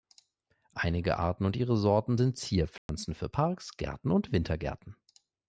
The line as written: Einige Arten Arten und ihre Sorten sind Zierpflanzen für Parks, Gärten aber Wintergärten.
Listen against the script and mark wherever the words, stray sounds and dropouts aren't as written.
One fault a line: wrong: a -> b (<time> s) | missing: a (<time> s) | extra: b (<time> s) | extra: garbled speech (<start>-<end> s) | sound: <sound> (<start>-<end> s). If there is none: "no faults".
missing: Arten (1.4 s)
sound: dropout (2.8-2.9 s)
wrong: aber -> und (4.1 s)